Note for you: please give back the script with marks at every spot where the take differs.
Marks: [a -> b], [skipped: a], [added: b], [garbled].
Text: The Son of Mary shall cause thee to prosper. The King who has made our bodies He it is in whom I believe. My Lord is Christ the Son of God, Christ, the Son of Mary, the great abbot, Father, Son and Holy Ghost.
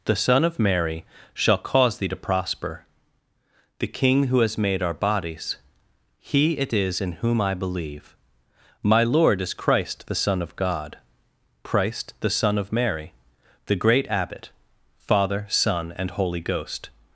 The Son of Mary shall cause thee to prosper. The King who has made our bodies He it is in whom I believe. My Lord is Christ the Son of God, Christ, the Son of Mary, the great abbot, Father, Son and Holy Ghost.